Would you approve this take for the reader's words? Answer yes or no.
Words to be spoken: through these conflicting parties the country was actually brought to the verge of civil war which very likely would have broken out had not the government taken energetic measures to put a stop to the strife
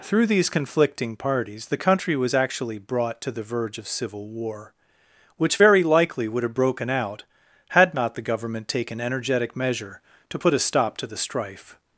no